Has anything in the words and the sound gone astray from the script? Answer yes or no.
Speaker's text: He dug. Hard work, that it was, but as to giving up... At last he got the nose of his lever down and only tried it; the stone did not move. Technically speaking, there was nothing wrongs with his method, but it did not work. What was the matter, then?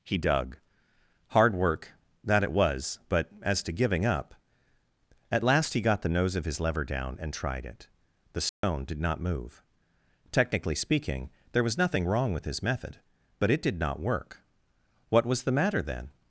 yes